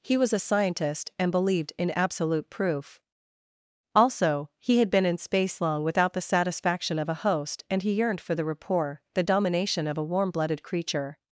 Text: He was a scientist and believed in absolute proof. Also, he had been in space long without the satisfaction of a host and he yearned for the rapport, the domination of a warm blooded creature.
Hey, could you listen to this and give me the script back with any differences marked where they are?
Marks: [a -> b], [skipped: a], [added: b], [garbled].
He was a scientist and believed in absolute proof. Also, he had been in space long without the satisfaction of a host and he yearned for the rapport, the domination of a warm blooded creature.